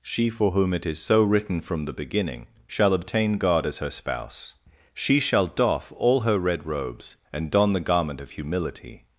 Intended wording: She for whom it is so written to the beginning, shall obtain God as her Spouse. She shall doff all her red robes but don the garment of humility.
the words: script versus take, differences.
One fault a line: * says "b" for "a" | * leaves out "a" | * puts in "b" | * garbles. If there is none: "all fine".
* says "from" for "to"
* says "and" for "but"